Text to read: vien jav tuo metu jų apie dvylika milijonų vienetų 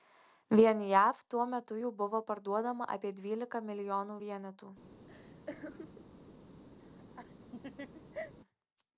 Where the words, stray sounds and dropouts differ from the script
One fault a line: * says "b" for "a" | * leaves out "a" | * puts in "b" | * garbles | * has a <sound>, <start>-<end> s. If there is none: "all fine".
* puts in "buvo parduodama"
* has a laugh, 5.1-6.1 s
* has a laugh, 6.8-8.3 s